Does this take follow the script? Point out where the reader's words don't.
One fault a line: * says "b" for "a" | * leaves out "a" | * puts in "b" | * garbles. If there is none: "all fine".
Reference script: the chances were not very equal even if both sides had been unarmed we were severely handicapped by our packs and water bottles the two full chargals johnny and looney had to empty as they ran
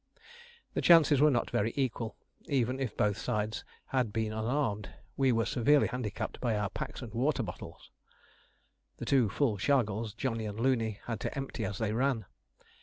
all fine